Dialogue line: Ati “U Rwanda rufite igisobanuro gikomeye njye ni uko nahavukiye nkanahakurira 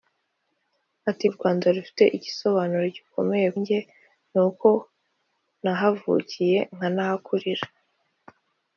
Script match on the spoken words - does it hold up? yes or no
yes